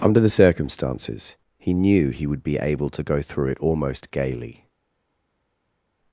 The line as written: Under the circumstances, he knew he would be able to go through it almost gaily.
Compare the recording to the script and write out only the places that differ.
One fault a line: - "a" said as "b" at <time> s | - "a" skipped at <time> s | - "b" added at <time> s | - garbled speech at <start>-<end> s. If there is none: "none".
none